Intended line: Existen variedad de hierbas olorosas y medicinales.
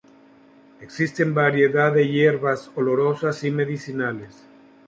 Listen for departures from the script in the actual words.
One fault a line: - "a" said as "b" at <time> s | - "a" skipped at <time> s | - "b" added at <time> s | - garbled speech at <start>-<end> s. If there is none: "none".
none